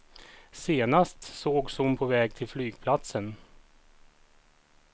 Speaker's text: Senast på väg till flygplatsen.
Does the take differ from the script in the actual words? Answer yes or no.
yes